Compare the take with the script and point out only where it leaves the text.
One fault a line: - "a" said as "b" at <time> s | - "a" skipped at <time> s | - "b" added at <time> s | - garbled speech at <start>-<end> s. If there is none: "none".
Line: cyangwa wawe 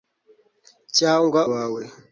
none